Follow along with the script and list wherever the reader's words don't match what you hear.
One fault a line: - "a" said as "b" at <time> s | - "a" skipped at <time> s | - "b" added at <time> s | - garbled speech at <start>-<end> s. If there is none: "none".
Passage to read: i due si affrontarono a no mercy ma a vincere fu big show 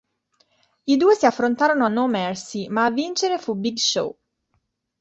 none